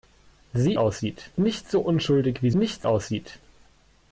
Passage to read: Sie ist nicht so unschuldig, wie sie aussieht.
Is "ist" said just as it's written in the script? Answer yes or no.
no